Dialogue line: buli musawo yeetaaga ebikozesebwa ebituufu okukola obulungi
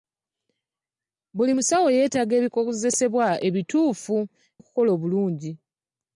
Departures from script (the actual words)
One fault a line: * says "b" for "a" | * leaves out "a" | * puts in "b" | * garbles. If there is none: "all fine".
all fine